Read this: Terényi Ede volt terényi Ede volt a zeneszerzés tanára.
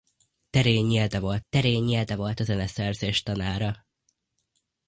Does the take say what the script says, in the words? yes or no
yes